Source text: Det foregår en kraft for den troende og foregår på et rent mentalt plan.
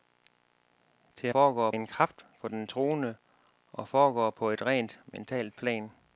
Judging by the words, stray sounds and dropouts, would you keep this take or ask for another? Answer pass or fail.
pass